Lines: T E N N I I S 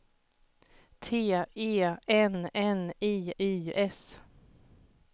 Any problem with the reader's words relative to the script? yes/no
no